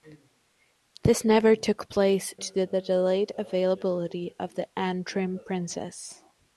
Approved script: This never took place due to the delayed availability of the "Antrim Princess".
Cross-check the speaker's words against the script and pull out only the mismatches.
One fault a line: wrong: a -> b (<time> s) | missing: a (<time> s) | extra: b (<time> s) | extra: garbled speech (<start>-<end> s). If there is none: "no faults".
missing: due (2.3 s)